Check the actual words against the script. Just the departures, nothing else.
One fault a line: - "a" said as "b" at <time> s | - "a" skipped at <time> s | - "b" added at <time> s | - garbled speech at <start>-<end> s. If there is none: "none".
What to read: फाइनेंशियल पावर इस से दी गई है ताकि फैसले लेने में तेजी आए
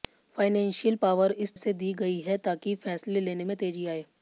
none